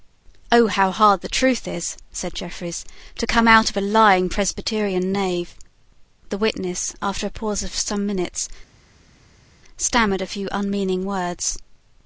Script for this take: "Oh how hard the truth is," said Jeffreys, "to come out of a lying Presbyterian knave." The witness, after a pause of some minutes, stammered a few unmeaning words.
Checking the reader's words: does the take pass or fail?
pass